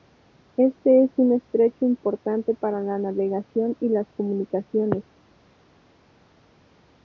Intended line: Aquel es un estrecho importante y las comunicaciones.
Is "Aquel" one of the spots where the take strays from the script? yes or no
yes